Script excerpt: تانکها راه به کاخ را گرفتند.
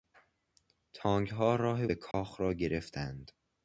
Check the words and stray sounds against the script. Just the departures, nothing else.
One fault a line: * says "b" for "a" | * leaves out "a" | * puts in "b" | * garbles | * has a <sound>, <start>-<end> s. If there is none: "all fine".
* has a dropout, 2.1-2.1 s